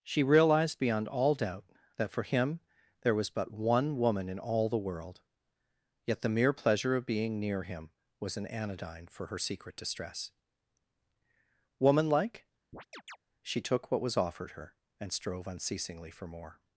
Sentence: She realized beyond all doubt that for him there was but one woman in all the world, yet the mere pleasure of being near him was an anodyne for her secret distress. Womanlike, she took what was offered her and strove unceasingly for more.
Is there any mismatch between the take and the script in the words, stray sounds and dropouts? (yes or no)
yes